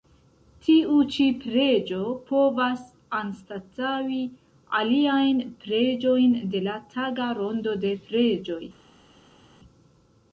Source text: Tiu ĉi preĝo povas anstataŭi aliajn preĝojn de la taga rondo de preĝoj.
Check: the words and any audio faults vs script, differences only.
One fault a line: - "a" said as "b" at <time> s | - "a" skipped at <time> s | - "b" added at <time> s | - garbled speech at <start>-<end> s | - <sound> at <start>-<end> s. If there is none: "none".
none